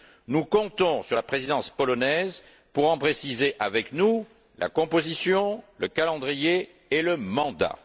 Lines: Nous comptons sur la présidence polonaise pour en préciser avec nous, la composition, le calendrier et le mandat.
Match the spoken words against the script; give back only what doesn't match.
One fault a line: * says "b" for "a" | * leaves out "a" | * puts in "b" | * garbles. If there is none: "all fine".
all fine